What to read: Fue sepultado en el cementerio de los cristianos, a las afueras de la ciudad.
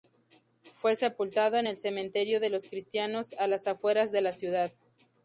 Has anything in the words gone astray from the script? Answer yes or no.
no